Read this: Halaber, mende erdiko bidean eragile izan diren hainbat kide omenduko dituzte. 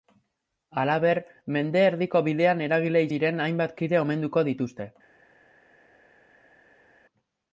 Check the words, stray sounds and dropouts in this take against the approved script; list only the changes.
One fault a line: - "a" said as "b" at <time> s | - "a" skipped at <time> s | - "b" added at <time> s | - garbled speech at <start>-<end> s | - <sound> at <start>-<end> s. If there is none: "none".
- "izan" skipped at 3.1 s